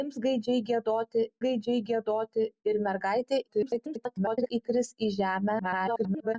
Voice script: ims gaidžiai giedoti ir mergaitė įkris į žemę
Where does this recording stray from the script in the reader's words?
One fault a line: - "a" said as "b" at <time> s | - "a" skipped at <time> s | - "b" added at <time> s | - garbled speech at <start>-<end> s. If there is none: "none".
- "gaidžiai giedoti" added at 1.4 s
- garbled speech at 3.5-4.5 s
- garbled speech at 5.6-6.3 s